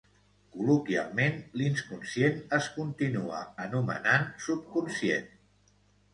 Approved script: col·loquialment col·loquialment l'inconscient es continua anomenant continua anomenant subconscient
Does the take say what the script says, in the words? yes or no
no